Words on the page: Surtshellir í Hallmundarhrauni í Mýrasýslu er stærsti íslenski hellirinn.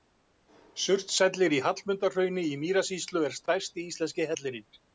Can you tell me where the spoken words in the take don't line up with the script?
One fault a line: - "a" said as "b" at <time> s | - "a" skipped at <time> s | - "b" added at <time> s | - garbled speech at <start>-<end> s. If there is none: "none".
none